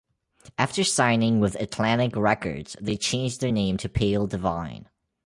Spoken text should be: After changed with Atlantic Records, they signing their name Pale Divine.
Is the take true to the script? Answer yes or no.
no